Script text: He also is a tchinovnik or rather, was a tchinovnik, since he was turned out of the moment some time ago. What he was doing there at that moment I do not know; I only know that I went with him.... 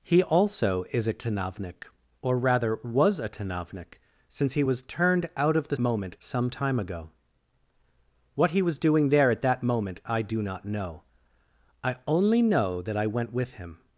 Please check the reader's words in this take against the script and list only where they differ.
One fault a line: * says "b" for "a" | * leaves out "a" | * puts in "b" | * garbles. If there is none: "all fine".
all fine